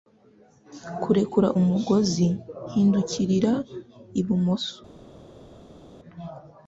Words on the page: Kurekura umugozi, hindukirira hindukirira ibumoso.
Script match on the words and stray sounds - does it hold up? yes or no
no